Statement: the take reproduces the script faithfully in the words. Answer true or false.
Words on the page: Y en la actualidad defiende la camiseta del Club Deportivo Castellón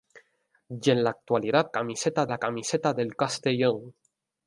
false